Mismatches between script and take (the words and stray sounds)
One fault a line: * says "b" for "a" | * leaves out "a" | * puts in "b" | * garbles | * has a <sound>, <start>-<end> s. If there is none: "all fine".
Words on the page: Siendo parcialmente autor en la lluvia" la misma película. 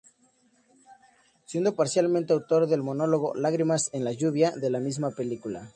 * puts in "del monólogo Lágrimas"
* puts in "de"